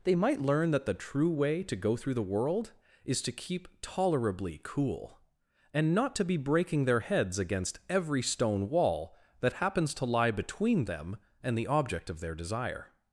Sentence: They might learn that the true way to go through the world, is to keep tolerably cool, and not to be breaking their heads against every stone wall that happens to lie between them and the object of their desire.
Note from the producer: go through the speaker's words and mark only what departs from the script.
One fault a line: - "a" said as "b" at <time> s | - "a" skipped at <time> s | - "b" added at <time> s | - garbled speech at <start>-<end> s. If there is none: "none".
none